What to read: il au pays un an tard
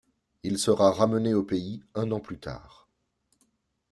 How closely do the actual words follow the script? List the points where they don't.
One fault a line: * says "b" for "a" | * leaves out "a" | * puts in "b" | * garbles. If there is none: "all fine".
* puts in "sera ramené"
* puts in "plus"